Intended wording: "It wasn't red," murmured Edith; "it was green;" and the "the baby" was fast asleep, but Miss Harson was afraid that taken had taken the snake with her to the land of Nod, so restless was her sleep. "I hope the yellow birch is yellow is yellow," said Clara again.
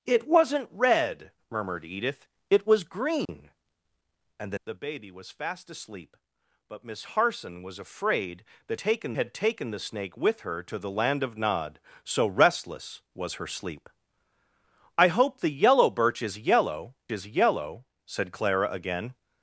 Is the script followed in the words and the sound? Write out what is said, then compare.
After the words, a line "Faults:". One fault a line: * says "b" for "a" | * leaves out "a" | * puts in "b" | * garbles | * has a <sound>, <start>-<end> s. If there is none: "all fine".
"It wasn't red," murmured Edith; "it was green;" and the "the baby" was fast asleep, but Miss Harson was afraid that taken had taken the snake with her to the land of Nod, so restless was her sleep. "I hope the yellow birch is yellow is yellow," said Clara again.
Faults:
* has a dropout, 3.3-3.3 s